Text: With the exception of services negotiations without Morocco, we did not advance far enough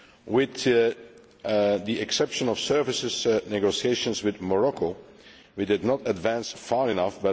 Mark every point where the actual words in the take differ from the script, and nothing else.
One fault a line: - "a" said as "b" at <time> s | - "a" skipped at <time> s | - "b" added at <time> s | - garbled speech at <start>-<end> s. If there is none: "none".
- "without" said as "with" at 4.2 s